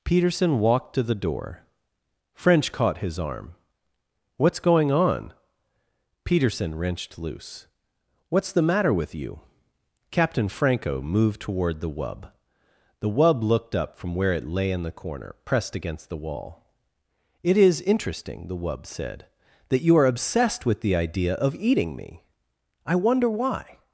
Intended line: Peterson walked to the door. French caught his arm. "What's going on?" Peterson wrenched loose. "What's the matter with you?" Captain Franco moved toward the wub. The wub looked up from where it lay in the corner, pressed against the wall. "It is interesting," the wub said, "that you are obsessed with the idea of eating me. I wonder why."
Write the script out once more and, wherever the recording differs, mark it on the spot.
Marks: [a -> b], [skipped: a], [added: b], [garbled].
Peterson walked to the door. French caught his arm. "What's going on?" Peterson wrenched loose. "What's the matter with you?" Captain Franco moved toward the wub. The wub looked up from where it lay in the corner, pressed against the wall. "It is interesting," the wub said, "that you are obsessed with the idea of eating me. I wonder why."